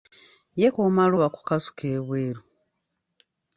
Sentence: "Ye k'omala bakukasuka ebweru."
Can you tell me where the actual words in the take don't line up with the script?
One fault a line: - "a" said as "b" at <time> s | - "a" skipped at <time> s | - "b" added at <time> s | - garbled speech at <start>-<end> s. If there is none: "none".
none